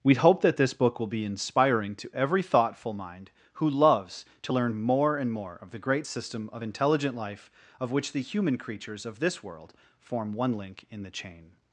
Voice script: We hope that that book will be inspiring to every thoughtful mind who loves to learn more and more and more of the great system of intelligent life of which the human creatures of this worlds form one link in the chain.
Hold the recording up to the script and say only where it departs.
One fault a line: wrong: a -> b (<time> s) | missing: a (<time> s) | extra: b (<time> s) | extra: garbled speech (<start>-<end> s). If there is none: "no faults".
wrong: that -> this (0.6 s)
missing: and more (5.6 s)
wrong: worlds -> world (9.4 s)